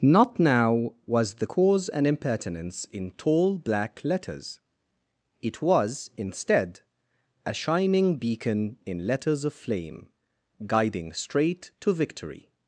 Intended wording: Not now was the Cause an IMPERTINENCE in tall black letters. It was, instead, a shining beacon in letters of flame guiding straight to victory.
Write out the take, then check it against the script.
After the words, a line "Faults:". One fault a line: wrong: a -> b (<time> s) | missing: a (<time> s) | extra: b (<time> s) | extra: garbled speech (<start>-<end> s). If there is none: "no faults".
Not now was the Cause an IMPERTINENCE in tall black letters. It was, instead, a shining beacon in letters of flame guiding straight to victory.
Faults:
no faults